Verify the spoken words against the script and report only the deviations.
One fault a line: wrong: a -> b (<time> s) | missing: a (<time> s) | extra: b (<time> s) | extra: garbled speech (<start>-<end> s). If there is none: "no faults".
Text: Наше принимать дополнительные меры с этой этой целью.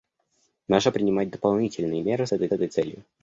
no faults